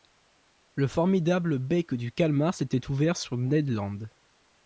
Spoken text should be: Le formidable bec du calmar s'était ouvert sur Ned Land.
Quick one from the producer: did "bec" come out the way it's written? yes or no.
yes